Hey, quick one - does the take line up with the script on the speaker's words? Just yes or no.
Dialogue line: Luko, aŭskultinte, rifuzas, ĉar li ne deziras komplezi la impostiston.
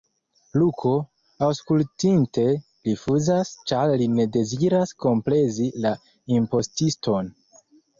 yes